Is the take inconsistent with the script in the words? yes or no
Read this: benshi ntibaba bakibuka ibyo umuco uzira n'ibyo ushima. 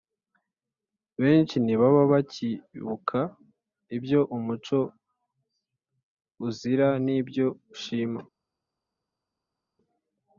no